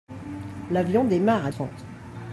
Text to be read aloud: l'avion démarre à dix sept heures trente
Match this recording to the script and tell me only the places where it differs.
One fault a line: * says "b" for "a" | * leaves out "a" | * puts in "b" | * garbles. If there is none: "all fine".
* leaves out "dix sept heures"